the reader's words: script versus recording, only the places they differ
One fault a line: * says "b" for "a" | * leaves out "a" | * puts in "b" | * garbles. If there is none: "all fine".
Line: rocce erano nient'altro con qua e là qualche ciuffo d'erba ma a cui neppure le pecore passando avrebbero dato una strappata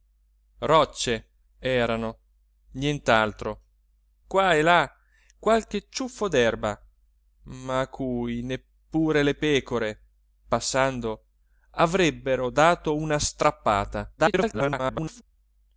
* leaves out "con"
* garbles